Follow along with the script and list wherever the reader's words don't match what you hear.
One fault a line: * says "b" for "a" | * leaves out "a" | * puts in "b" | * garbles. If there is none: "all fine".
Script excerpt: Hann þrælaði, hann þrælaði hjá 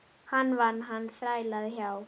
* says "vann" for "þrælaði"